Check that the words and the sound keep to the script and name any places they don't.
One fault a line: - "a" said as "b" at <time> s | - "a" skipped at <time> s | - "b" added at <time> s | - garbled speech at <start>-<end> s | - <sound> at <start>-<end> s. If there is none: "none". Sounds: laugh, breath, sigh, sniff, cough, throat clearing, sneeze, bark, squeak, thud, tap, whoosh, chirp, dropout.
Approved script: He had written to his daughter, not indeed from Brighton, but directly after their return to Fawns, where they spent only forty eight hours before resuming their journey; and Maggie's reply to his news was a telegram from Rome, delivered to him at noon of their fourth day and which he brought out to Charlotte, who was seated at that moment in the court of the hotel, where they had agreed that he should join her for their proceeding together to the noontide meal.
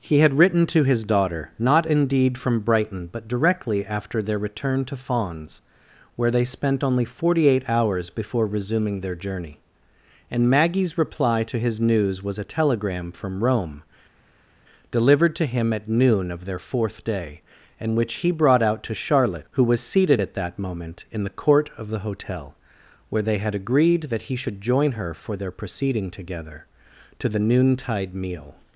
none